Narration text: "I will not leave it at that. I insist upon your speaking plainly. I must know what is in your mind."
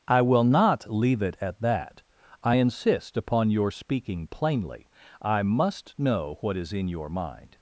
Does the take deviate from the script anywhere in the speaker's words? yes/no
no